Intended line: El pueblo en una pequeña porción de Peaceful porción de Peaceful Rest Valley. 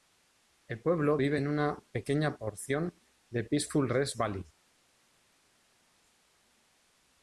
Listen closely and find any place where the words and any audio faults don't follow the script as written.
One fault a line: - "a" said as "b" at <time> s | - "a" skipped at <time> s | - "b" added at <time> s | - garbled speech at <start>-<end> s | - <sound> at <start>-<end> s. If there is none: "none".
- "vive" added at 1.2 s
- "porción de Peaceful" skipped at 3.9 s